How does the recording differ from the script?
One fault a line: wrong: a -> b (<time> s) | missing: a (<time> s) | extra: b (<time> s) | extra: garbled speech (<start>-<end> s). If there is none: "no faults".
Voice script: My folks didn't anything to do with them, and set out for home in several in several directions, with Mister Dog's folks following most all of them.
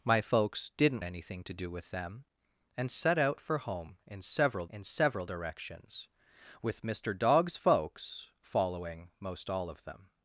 no faults